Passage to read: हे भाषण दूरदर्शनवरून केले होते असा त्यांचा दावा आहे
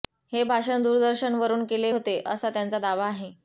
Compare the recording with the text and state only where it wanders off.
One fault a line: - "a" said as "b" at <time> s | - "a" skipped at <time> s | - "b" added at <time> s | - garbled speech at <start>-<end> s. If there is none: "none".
none